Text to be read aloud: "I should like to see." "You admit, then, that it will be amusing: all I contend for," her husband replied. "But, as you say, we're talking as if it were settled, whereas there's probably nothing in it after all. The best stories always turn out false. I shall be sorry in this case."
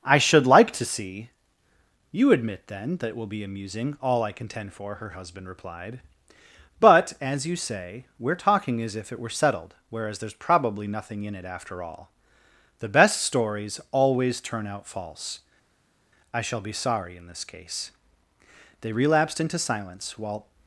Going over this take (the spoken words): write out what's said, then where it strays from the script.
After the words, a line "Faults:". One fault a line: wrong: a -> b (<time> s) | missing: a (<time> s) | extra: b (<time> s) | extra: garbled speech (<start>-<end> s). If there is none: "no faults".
"I should like to see." "You admit, then, that it will be amusing: all I contend for," her husband replied. "But, as you say, we're talking as if it were settled, whereas there's probably nothing in it after all. The best stories always turn out false. I shall be sorry in this case." They relapsed into silence while
Faults:
extra: They relapsed into silence while (18.8 s)